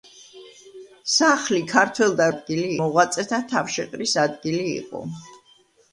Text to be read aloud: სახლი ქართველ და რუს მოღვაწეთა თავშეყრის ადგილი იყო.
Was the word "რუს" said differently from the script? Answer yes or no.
yes